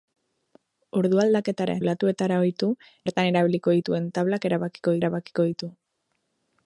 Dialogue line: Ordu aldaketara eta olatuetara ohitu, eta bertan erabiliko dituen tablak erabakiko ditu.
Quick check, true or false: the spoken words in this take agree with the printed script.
false